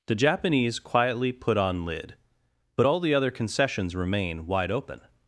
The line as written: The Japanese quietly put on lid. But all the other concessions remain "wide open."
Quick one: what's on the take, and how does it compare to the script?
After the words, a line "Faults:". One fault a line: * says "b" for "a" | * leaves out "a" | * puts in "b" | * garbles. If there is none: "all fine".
The Japanese quietly put on lid. But all the other concessions remain "wide open."
Faults:
all fine